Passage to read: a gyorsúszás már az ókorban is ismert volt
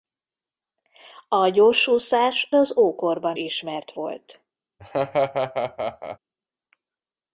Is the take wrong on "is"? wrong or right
wrong